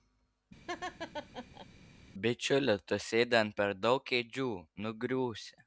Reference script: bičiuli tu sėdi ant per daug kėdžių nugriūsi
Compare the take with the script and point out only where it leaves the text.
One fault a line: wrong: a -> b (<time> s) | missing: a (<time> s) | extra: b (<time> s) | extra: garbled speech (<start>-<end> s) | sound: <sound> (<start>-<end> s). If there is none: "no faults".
sound: laugh (0.7-1.7 s)